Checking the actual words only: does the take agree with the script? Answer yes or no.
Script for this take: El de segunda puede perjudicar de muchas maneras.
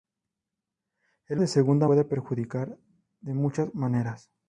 yes